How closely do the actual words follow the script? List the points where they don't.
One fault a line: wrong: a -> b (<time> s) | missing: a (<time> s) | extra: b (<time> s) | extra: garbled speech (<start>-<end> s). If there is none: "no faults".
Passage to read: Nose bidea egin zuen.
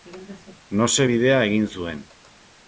no faults